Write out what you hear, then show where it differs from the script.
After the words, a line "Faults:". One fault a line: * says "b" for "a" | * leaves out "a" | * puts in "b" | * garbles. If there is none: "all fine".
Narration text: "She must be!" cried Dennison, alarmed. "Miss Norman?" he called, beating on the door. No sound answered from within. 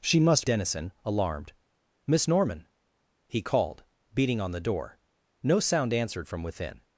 "She must Dennison, alarmed. "Miss Norman?" he called, beating on the door. No sound answered from within.
Faults:
* leaves out "be cried"